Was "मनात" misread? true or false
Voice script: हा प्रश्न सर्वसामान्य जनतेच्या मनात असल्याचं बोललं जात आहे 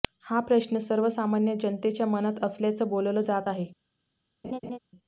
false